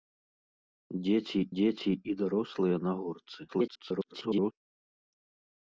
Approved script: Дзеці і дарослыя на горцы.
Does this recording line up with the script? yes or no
no